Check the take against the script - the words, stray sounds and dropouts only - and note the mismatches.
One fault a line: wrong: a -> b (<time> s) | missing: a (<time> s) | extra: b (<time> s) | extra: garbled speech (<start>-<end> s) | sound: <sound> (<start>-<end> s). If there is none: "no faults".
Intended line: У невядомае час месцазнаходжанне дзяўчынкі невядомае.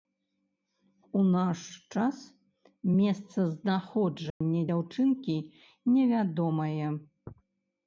wrong: невядомае -> наш (1.4 s)
sound: dropout (4.3-4.4 s)